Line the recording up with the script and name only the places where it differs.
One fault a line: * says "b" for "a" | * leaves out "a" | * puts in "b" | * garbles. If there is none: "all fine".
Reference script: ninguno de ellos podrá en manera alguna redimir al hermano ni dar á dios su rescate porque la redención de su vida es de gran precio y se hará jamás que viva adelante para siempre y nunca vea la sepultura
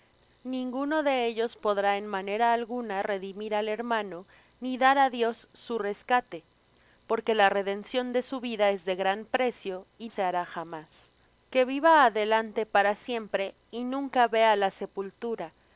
all fine